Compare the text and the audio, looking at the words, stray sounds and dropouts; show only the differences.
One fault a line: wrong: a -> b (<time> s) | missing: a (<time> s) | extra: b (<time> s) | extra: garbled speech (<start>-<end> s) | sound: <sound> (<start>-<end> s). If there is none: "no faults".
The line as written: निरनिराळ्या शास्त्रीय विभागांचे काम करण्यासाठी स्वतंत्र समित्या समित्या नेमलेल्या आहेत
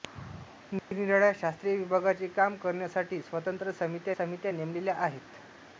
sound: dropout (0.8-0.9 s)